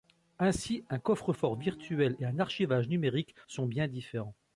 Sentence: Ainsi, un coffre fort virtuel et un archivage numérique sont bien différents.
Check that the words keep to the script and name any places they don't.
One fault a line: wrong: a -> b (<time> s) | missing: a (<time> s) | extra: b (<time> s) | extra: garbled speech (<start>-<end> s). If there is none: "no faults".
no faults